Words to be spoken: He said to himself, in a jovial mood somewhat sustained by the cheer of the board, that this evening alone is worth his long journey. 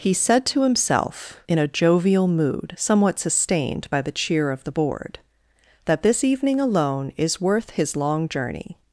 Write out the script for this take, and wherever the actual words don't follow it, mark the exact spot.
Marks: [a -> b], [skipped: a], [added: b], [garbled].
He said to himself, in a jovial mood somewhat sustained by the cheer of the board, that this evening alone is worth his long journey.